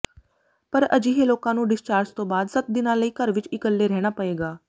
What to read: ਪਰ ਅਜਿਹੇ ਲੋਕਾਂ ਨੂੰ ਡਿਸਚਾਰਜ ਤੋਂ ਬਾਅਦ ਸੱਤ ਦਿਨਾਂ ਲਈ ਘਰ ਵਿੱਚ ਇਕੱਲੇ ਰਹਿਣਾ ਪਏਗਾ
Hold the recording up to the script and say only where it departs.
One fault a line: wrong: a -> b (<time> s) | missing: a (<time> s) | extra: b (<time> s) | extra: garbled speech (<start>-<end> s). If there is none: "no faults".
no faults